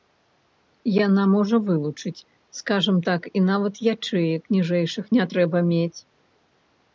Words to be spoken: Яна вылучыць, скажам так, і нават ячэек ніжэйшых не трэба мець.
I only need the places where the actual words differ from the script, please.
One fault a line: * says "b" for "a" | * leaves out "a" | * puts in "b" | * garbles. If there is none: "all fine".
* puts in "можа"